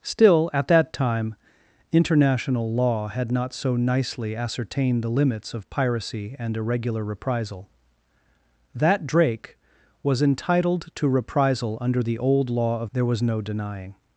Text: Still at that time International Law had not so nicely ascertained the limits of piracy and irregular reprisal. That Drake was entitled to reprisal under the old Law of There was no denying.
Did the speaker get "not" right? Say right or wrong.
right